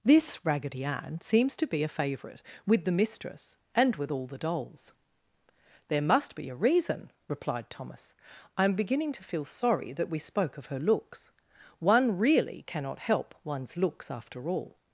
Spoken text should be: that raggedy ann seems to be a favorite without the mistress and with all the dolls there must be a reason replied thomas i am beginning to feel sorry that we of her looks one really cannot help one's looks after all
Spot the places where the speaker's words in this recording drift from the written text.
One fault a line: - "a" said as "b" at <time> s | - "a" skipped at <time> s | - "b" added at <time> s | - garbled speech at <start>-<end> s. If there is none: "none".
- "that" said as "this" at 0.0 s
- "without" said as "with" at 2.6 s
- "spoke" added at 10.2 s